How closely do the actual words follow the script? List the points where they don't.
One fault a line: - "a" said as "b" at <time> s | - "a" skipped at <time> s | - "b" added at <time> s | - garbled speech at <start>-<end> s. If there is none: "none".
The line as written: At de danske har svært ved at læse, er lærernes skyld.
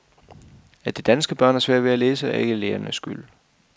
- "børn" added at 1.4 s
- "ikke" added at 2.4 s